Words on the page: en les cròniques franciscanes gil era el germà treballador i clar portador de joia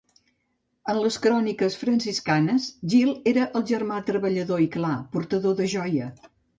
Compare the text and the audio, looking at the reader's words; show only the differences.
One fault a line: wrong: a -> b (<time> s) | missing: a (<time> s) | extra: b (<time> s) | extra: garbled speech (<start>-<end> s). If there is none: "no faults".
no faults